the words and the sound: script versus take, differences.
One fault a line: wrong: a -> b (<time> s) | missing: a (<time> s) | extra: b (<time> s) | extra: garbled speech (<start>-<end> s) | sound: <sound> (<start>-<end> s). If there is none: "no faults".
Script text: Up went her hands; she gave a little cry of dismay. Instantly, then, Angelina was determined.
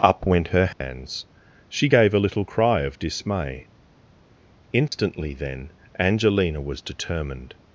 sound: dropout (0.7-0.8 s)
sound: dropout (4.9-4.9 s)